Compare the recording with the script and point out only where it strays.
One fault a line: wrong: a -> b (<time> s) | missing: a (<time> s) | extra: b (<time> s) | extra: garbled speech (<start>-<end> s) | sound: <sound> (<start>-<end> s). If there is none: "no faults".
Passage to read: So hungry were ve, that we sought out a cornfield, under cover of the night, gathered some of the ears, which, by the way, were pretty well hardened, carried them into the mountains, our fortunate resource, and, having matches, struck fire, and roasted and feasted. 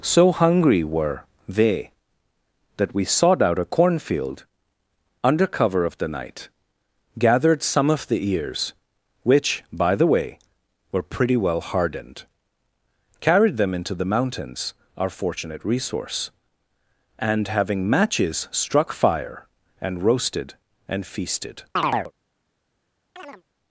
wrong: ve -> they (1.5 s)
sound: chirp (21.8-22.1 s)
sound: chirp (23.2-23.4 s)